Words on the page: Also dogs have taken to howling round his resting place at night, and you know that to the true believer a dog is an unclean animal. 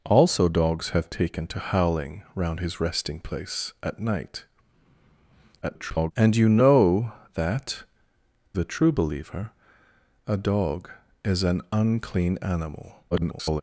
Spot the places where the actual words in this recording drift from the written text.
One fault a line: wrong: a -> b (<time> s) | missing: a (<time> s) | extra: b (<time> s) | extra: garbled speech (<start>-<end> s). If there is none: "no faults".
extra: garbled speech (5.6-6.1 s)
missing: to (7.8 s)
extra: garbled speech (13.1-13.6 s)